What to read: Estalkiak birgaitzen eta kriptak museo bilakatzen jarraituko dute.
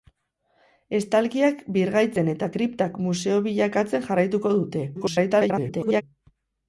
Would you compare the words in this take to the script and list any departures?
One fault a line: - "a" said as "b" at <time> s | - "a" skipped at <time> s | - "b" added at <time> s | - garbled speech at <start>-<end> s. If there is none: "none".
- garbled speech at 5.0-6.0 s